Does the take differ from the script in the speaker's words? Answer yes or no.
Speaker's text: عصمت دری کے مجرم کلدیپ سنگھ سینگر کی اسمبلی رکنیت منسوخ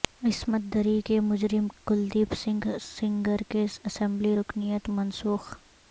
no